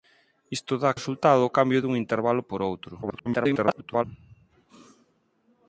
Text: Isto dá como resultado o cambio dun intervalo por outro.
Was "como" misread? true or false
true